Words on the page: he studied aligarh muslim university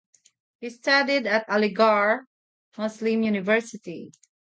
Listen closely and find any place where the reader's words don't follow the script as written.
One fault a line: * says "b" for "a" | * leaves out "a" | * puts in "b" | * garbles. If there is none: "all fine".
* puts in "at"